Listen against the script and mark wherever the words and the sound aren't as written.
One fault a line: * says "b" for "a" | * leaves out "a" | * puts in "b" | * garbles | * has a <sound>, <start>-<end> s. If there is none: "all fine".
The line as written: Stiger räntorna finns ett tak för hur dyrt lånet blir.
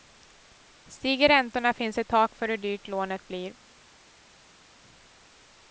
all fine